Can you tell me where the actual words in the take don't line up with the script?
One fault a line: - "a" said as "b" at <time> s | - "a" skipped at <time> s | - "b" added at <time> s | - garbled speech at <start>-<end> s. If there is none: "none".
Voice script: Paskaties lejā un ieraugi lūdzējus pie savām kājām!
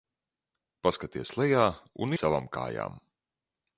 - "ieraugi lūdzējus pie" skipped at 2.2 s